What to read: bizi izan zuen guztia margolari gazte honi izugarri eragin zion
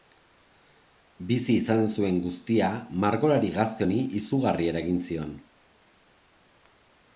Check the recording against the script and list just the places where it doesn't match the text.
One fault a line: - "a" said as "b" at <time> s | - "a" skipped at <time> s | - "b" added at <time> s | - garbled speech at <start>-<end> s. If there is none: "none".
none